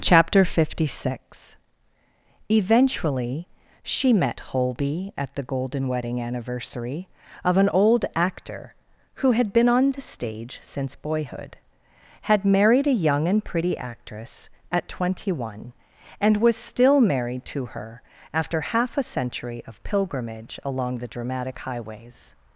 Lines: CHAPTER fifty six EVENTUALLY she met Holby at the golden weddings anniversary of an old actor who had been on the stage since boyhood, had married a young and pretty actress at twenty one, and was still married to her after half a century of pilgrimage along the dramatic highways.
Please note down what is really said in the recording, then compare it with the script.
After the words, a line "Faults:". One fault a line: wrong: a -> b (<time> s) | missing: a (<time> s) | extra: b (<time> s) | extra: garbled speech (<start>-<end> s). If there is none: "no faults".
CHAPTER fifty six EVENTUALLY she met Holby at the golden wedding anniversary of an old actor who had been on the stage since boyhood, had married a young and pretty actress at twenty one, and was still married to her after half a century of pilgrimage along the dramatic highways.
Faults:
wrong: weddings -> wedding (5.9 s)